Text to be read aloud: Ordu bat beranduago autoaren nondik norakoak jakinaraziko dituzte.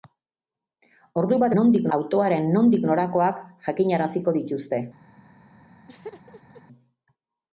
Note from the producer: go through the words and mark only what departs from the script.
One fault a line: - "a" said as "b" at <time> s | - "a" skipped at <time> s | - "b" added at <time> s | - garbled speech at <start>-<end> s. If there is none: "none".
- "beranduago" said as "nondik" at 1.6 s